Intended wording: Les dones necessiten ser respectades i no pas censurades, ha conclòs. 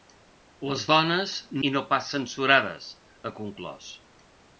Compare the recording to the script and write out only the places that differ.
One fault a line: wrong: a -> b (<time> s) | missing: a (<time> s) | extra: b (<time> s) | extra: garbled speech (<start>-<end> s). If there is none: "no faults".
missing: necessiten ser respectades (1.3 s)